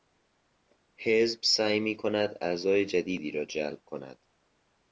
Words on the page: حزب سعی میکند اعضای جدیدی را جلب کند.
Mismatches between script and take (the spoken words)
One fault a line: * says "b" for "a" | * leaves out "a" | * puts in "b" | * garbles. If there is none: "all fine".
all fine